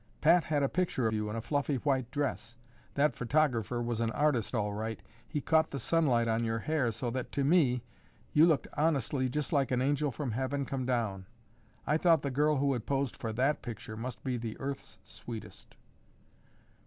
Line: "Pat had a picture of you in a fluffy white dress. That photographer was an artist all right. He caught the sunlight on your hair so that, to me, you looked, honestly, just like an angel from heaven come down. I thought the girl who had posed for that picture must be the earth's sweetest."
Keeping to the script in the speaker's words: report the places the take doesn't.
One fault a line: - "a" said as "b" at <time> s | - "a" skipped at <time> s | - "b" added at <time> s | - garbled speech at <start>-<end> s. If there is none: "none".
- "of" skipped at 1.1 s